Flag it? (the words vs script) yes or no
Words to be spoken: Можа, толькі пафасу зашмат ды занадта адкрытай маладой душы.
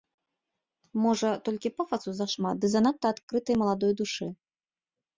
no